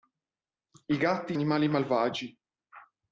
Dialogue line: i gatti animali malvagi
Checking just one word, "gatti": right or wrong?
right